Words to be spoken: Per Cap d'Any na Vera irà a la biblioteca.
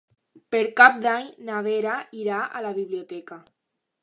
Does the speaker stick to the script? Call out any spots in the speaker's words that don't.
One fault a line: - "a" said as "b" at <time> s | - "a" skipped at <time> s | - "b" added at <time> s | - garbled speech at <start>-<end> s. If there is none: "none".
none